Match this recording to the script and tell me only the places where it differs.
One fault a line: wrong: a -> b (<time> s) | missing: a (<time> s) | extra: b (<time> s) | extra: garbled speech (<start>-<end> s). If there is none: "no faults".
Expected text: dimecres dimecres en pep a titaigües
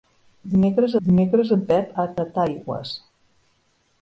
no faults